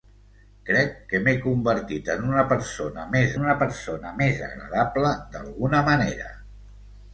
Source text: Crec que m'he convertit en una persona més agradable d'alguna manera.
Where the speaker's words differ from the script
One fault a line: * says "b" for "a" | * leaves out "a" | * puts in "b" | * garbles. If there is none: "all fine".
* puts in "una persona més"